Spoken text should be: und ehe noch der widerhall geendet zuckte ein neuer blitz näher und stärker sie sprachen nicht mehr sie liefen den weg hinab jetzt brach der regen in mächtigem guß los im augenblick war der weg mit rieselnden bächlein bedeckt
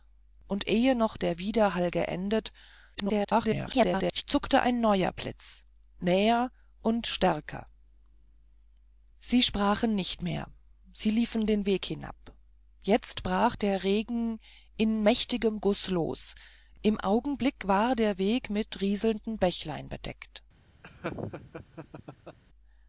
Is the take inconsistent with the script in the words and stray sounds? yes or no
yes